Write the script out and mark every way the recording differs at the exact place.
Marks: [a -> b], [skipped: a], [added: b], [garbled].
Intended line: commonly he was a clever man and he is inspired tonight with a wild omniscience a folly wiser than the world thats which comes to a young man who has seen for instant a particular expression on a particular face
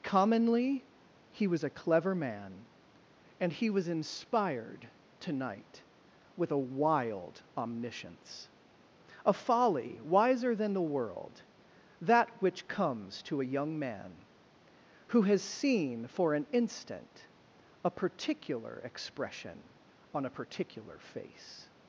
commonly he was a clever man and he [is -> was] inspired tonight with a wild omniscience a folly wiser than the world [thats -> that] which comes to a young man who has seen for [added: an] instant a particular expression on a particular face